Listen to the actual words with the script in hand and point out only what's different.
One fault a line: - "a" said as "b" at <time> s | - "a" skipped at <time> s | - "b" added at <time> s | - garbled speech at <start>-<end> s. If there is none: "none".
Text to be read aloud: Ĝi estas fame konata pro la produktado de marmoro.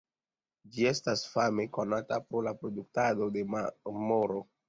none